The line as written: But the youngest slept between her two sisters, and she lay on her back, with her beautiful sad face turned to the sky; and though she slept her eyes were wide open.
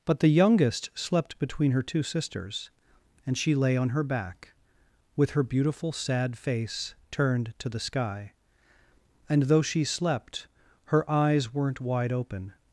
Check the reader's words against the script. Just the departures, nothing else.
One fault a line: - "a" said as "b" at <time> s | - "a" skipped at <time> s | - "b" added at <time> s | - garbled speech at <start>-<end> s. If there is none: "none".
- "were" said as "weren't" at 11.5 s